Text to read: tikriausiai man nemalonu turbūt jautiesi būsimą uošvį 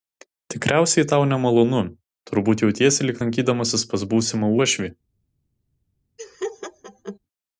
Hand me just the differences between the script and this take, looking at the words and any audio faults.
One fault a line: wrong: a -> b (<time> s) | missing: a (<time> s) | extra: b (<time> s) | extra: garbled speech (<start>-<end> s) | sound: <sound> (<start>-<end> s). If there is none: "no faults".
wrong: man -> tau (1.1 s)
extra: lyg lankydamasis pas (3.1 s)
sound: laugh (6.2-7.2 s)